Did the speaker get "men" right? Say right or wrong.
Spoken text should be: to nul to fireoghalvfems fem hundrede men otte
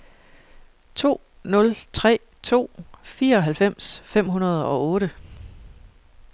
wrong